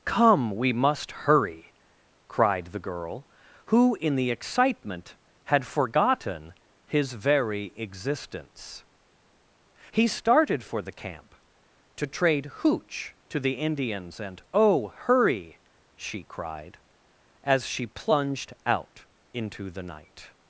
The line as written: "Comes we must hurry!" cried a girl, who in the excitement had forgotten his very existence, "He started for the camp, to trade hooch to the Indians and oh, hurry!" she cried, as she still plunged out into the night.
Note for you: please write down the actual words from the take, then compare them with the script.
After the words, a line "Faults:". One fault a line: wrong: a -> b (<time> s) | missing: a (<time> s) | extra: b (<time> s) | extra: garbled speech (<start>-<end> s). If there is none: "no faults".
"Come we must hurry!" cried the girl, who in the excitement had forgotten his very existence, "He started for the camp, to trade hooch to the Indians and oh, hurry!" she cried, as she plunged out into the night.
Faults:
wrong: Comes -> Come (0.1 s)
wrong: a -> the (2.7 s)
missing: still (17.9 s)